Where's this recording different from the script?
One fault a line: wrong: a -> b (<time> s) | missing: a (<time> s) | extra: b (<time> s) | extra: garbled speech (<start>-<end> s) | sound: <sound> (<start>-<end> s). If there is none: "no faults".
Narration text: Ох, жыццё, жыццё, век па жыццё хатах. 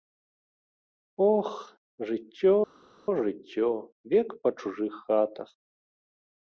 wrong: жыццё -> чужых (4.6 s)